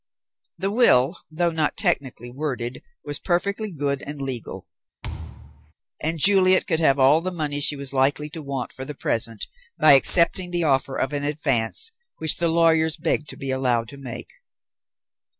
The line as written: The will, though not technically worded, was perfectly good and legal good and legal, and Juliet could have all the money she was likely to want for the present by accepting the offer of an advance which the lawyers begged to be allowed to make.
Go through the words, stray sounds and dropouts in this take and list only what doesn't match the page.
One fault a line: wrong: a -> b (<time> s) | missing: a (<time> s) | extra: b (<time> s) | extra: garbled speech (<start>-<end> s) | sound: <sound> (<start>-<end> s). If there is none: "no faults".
missing: good and legal (4.7 s)
sound: thud (5.0-5.7 s)